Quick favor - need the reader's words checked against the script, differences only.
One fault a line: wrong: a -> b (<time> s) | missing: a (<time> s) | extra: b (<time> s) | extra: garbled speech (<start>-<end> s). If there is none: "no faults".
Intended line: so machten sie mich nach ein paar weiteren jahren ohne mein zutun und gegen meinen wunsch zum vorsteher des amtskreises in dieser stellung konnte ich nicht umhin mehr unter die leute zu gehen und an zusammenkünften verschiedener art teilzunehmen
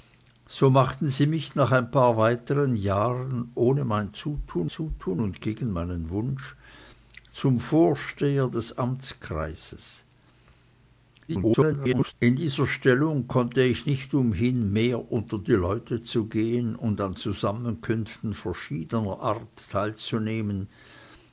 extra: zutun (4.7 s)
extra: garbled speech (11.3-12.1 s)